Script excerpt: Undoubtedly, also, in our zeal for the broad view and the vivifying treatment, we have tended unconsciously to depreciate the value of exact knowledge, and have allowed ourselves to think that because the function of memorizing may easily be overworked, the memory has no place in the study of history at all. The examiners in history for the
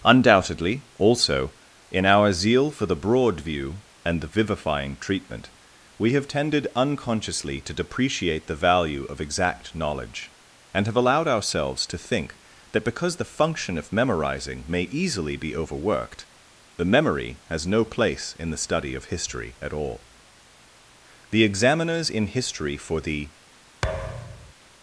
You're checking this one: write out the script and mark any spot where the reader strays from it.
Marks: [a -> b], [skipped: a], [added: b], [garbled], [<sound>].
Undoubtedly, also, in our zeal for the broad view and the vivifying treatment, we have tended unconsciously to depreciate the value of exact knowledge, and have allowed ourselves to think that because the function of memorizing may easily be overworked, the memory has no place in the study of history at all. The examiners in history for the [thud]